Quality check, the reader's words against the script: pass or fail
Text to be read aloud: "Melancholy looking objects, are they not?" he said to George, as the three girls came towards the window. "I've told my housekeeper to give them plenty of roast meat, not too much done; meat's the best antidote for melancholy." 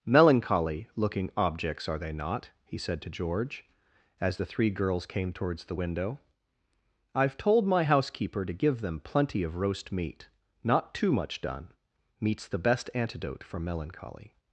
pass